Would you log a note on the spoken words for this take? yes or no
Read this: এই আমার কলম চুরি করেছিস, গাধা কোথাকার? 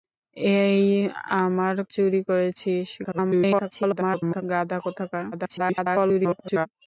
yes